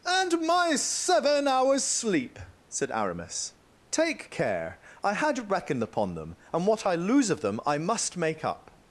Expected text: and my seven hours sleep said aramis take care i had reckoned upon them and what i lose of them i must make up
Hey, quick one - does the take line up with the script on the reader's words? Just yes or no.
yes